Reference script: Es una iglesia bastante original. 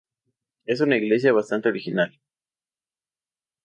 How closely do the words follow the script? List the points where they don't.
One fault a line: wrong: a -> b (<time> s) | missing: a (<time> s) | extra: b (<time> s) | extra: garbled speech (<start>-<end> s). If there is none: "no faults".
no faults